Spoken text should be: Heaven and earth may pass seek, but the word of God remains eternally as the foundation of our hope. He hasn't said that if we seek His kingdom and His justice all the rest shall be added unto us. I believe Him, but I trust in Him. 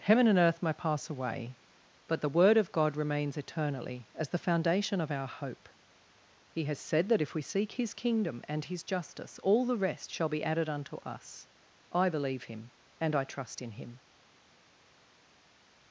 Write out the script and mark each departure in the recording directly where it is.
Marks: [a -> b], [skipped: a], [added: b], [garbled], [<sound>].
Heaven and earth may pass [seek, -> away] but the word of God remains eternally as the foundation of our hope. He [hasn't -> has] said that if we seek His kingdom and His justice all the rest shall be added unto us. I believe Him, [but -> and] I trust in Him.